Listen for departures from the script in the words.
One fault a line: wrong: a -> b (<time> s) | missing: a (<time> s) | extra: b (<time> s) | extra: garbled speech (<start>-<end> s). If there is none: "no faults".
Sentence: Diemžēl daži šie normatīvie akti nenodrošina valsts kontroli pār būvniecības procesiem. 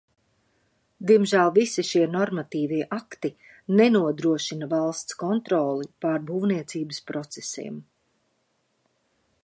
wrong: daži -> visi (1.6 s)